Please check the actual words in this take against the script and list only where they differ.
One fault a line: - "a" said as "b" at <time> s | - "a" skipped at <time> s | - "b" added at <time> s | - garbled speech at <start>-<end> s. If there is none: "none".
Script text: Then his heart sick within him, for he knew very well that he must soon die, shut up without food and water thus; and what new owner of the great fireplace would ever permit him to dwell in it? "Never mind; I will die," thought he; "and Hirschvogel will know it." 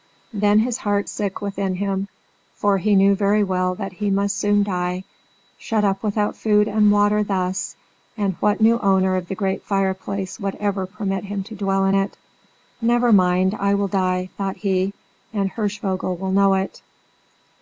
none